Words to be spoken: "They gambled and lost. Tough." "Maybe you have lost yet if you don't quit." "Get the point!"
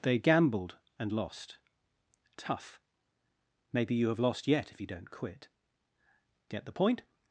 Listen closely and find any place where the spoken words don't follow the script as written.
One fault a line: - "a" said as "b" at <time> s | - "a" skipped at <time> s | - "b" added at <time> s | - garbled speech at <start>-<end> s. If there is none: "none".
none